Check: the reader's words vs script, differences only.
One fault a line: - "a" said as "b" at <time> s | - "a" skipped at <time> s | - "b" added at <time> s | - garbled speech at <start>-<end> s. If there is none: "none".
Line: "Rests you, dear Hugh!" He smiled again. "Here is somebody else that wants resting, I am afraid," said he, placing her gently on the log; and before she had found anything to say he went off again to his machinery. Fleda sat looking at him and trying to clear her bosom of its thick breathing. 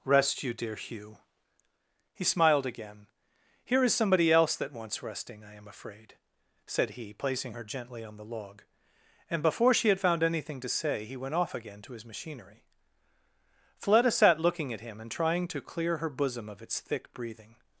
- "Rests" said as "Rest" at 0.0 s